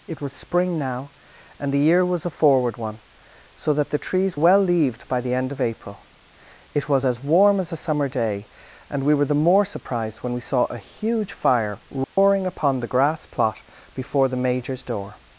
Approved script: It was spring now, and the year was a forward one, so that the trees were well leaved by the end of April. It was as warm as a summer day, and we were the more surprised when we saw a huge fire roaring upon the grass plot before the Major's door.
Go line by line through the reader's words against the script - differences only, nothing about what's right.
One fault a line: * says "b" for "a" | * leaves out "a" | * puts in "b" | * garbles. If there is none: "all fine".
* leaves out "were"